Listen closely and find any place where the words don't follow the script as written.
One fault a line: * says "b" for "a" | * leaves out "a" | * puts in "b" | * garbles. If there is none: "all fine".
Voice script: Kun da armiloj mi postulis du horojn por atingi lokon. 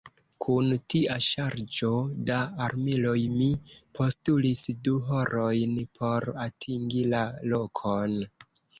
* puts in "tia ŝarĝo"
* puts in "la"